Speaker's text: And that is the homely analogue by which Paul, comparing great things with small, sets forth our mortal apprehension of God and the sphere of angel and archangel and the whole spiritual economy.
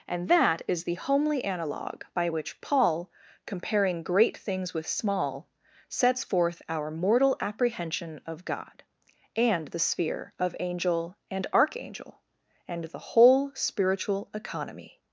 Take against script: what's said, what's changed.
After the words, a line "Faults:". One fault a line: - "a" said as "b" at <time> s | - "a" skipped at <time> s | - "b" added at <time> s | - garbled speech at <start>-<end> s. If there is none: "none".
And that is the homely analogue by which Paul, comparing great things with small, sets forth our mortal apprehension of God and the sphere of angel and archangel and the whole spiritual economy.
Faults:
none